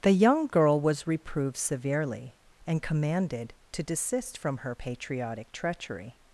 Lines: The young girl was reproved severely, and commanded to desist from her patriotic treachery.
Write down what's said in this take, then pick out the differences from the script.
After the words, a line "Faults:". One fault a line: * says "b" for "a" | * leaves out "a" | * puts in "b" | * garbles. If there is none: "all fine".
The young girl was reproved severely, and commanded to desist from her patriotic treachery.
Faults:
all fine